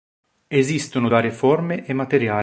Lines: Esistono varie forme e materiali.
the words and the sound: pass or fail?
pass